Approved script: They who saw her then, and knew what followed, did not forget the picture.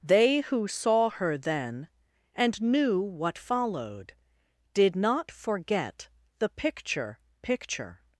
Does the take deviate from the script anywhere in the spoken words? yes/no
yes